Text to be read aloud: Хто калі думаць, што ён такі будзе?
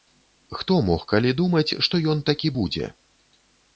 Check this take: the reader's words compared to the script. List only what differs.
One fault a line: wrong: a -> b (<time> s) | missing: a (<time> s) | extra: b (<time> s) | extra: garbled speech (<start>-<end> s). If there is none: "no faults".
extra: мог (0.9 s)